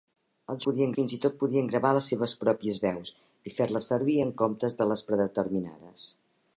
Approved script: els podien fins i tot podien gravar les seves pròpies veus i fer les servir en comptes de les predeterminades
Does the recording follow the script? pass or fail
pass